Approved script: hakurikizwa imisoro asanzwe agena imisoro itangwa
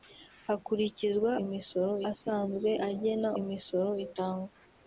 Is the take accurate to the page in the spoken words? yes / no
yes